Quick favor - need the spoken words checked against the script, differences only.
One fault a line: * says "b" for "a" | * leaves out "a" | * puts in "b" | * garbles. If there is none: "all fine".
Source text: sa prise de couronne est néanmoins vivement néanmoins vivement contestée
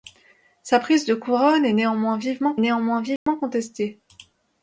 all fine